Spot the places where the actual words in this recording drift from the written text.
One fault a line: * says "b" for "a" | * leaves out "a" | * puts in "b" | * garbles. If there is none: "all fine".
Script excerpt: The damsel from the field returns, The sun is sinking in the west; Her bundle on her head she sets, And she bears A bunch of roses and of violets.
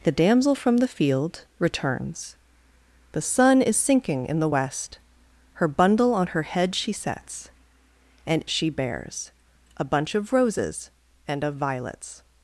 all fine